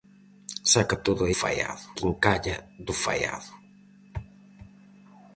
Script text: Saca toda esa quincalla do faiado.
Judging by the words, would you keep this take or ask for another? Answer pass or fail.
fail